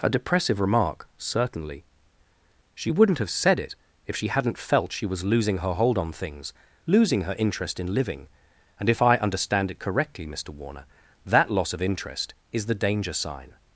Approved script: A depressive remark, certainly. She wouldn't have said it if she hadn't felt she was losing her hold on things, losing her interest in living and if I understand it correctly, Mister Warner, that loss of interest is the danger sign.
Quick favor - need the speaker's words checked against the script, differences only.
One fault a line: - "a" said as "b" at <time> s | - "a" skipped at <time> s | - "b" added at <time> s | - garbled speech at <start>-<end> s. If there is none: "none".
none